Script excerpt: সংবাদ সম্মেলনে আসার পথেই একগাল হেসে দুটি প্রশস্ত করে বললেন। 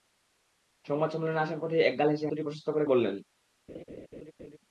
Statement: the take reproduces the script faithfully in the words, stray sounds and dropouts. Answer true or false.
false